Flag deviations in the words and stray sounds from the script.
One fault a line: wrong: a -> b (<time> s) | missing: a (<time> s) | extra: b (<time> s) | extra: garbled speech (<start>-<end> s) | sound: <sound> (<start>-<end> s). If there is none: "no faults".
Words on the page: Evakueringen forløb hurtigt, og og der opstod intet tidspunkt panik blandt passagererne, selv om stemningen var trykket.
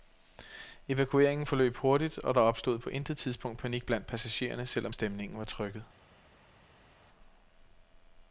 missing: og (2.4 s)
extra: på (2.8 s)